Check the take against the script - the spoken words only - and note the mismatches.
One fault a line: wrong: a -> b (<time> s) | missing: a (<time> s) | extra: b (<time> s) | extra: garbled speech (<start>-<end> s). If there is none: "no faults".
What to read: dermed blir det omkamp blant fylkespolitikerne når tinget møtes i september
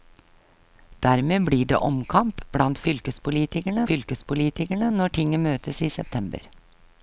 extra: fylkespolitikerne (3.9 s)